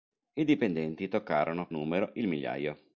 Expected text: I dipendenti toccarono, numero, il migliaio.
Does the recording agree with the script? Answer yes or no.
yes